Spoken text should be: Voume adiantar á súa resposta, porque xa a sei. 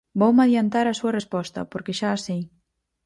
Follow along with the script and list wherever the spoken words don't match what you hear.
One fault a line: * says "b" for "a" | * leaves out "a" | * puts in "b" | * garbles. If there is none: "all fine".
all fine